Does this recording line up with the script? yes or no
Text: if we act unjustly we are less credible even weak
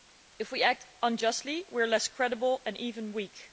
no